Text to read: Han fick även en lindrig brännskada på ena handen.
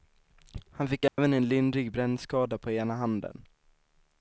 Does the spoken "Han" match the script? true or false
true